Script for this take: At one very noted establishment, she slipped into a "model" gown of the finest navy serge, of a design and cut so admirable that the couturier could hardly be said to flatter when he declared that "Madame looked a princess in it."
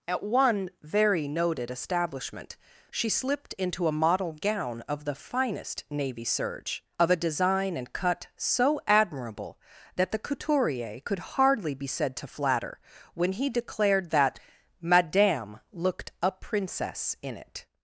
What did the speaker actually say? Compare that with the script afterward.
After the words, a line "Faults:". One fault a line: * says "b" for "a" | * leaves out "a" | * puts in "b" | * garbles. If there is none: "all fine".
At one very noted establishment, she slipped into a "model" gown of the finest navy serge, of a design and cut so admirable that the couturier could hardly be said to flatter when he declared that "Madame looked a princess in it."
Faults:
all fine